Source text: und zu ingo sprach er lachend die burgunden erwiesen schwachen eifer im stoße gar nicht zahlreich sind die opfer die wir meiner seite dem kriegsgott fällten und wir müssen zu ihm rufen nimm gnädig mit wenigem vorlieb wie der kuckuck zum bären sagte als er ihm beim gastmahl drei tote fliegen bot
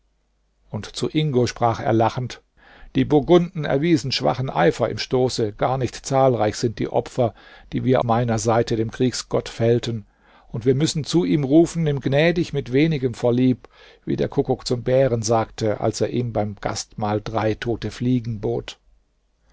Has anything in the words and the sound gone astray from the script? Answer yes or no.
no